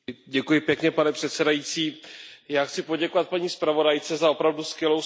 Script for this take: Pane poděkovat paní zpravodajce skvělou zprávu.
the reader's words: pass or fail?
fail